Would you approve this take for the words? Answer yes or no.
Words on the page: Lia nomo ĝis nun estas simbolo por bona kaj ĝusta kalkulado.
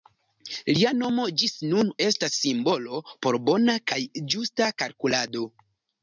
yes